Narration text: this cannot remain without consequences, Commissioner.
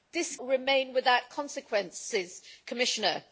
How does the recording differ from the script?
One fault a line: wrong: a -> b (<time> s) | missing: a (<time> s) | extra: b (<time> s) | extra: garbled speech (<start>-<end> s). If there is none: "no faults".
missing: cannot (0.3 s)